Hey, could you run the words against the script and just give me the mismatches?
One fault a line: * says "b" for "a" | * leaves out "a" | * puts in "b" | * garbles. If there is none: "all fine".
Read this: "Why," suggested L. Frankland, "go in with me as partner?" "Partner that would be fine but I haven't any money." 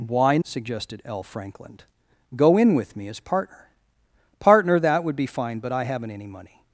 all fine